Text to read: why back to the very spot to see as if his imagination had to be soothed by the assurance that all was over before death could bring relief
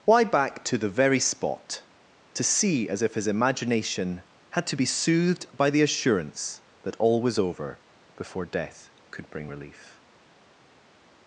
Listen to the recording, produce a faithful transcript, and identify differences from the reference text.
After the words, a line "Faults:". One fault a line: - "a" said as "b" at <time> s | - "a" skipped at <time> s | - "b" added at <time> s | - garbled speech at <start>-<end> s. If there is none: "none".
why back to the very spot to see as if his imagination had to be soothed by the assurance that all was over before death could bring relief
Faults:
none